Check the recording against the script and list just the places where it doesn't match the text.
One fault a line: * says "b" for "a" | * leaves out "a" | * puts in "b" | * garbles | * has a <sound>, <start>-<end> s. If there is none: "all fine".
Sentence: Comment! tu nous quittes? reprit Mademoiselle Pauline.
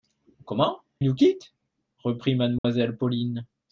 * leaves out "tu"
* has a dropout, 2.6-2.6 s